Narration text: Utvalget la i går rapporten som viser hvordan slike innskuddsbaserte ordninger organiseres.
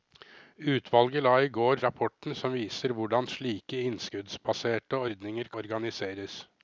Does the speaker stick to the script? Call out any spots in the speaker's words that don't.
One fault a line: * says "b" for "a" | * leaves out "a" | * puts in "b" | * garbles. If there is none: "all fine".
all fine